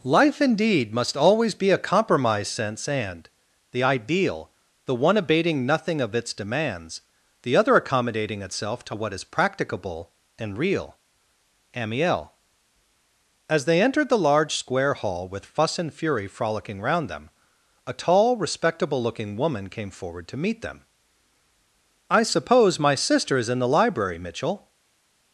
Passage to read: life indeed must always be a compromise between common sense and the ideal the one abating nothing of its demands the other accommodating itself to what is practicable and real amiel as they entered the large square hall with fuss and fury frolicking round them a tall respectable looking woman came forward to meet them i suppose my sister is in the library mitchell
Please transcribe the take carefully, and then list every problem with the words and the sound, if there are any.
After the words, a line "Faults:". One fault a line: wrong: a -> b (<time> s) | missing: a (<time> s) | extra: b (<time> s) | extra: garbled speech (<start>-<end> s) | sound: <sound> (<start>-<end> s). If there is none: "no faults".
life indeed must always be a compromise sense and the ideal the one abating nothing of its demands the other accommodating itself to what is practicable and real amiel as they entered the large square hall with fuss and fury frolicking round them a tall respectable looking woman came forward to meet them i suppose my sister is in the library mitchell
Faults:
missing: between common (2.5 s)